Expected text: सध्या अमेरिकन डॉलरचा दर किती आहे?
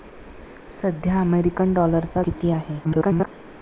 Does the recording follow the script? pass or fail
fail